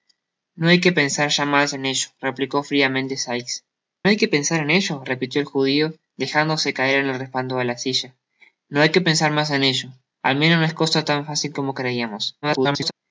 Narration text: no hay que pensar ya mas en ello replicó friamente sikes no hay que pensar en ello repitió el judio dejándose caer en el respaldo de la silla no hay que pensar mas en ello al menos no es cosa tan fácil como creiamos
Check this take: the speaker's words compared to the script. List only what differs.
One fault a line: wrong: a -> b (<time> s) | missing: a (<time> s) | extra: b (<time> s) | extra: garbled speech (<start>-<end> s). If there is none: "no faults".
missing: no (3.6 s)
extra: garbled speech (12.4-12.9 s)